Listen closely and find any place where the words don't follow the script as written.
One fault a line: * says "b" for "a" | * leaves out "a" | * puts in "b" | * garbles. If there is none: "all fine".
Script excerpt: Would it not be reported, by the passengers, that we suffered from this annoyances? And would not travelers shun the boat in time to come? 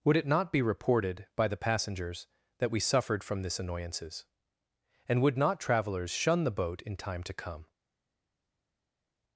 all fine